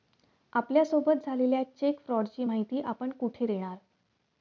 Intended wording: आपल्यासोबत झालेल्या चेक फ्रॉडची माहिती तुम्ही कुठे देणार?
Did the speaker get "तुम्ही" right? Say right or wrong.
wrong